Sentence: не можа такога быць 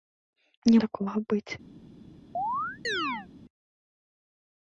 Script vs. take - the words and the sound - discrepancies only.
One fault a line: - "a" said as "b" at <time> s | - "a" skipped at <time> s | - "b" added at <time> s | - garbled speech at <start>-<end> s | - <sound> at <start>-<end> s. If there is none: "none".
- "можа" skipped at 0.8 s
- chirp at 2.3-3.3 s